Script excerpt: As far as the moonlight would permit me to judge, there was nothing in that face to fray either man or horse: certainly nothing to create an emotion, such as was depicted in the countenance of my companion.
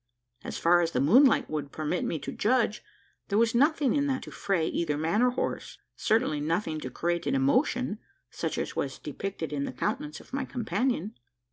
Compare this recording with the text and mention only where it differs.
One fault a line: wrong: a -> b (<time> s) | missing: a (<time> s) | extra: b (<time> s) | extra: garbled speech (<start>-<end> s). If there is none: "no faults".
missing: face (4.2 s)